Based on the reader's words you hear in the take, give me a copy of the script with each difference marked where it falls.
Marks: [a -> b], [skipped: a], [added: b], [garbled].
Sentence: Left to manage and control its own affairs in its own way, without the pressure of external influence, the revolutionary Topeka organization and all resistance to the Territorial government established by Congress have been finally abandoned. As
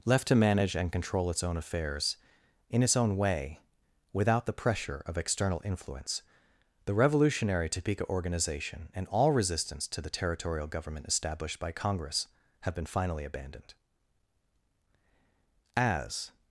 Left to manage and control its own affairs in its own way, without the pressure of external influence, the revolutionary Topeka organization and all resistance to the Territorial government established by Congress have been finally abandoned. As